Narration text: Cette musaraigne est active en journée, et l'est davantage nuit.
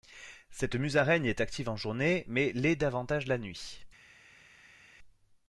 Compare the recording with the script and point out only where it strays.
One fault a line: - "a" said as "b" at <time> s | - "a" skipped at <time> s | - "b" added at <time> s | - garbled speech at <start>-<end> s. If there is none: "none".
- "et" said as "mais" at 2.3 s
- "la" added at 3.3 s